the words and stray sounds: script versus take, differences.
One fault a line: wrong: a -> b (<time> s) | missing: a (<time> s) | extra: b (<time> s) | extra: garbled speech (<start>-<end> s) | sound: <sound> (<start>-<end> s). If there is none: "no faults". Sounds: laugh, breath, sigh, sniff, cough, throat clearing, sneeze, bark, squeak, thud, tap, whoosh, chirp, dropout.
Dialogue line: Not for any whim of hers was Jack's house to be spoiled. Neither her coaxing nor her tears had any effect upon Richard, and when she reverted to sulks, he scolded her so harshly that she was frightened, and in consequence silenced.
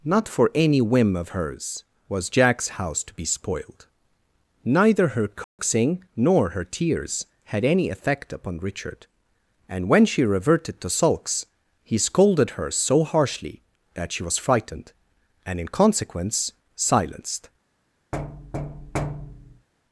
sound: dropout (5.4-5.6 s)
sound: thud (18.1-19.7 s)